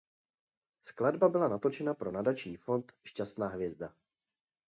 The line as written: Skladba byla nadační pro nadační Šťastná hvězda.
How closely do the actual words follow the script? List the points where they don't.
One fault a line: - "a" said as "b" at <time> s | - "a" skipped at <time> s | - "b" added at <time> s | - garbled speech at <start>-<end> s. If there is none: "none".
- "nadační" said as "natočena" at 1.5 s
- "fond" added at 2.6 s